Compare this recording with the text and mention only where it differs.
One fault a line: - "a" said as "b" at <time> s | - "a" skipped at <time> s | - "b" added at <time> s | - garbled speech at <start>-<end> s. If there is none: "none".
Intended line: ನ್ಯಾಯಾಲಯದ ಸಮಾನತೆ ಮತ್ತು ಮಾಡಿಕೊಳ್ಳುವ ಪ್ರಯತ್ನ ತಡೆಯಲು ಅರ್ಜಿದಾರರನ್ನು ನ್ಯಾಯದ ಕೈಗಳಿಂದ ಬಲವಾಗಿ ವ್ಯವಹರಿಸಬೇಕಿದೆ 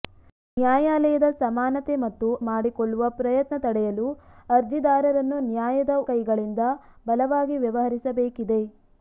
none